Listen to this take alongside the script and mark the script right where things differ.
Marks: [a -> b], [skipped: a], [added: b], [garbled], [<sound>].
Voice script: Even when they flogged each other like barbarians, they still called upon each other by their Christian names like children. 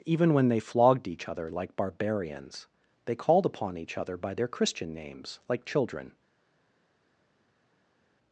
Even when they flogged each other like barbarians, they [skipped: still] called upon each other by their Christian names like children.